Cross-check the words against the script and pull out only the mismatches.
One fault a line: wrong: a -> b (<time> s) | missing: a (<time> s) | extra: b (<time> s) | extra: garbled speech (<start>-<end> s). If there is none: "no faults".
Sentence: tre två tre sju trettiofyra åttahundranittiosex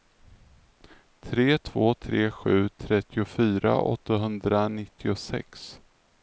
no faults